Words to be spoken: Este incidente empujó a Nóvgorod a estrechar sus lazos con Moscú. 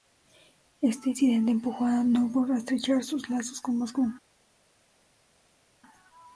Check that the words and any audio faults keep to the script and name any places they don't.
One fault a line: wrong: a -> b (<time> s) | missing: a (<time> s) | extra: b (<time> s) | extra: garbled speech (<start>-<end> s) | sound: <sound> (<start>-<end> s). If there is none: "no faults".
no faults